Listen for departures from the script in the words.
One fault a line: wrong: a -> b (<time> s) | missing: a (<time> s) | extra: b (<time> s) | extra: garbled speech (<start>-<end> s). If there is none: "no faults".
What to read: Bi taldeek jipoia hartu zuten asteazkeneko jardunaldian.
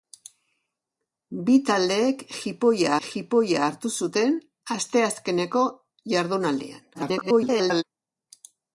extra: jipoia (3.1 s)
extra: garbled speech (6.9-7.8 s)